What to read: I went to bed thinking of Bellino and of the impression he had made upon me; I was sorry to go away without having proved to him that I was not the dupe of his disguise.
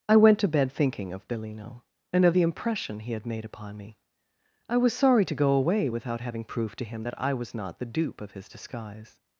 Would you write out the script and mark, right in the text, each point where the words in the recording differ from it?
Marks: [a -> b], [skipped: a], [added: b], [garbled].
I went to bed thinking of Bellino and of the impression he had made upon me; I was sorry to go away without having proved to him that I was not the dupe of his disguise.